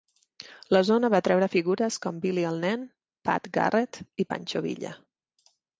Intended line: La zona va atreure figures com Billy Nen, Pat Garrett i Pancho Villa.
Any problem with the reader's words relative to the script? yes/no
yes